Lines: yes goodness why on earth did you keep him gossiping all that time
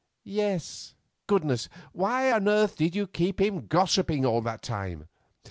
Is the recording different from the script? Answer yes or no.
no